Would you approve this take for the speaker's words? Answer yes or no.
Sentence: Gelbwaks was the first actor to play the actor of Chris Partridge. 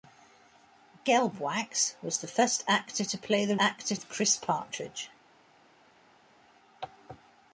yes